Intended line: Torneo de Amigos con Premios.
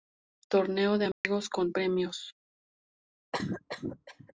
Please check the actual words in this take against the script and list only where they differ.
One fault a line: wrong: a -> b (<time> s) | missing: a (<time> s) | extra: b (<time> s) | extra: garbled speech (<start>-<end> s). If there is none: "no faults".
no faults